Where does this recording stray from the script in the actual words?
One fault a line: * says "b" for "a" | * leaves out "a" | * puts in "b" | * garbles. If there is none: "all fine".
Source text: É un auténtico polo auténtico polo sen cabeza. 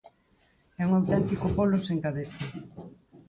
* leaves out "auténtico polo"